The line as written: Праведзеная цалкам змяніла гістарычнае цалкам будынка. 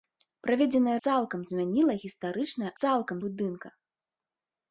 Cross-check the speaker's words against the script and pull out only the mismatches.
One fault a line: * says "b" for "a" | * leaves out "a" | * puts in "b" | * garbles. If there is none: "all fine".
all fine